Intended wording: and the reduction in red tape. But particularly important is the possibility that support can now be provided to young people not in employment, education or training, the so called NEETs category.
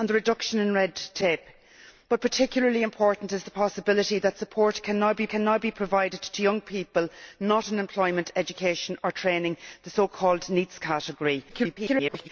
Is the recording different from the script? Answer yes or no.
yes